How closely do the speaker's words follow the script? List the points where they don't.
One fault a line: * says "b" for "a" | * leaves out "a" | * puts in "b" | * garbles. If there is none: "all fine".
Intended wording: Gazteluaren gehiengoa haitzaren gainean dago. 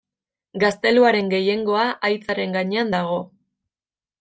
all fine